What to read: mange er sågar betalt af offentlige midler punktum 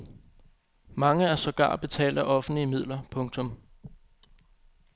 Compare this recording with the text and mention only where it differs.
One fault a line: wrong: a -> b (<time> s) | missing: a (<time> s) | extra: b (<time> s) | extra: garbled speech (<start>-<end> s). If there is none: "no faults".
no faults